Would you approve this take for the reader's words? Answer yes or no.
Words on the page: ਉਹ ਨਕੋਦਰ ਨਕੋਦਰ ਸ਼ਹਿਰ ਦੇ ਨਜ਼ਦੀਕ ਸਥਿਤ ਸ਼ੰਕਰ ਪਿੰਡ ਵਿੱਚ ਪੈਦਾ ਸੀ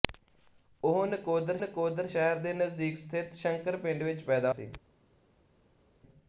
yes